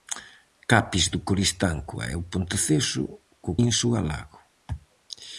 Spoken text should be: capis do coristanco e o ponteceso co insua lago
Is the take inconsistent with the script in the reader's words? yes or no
no